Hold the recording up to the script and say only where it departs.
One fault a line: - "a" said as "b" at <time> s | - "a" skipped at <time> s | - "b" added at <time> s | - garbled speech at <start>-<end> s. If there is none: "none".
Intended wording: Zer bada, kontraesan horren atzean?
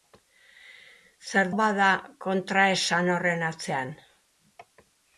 none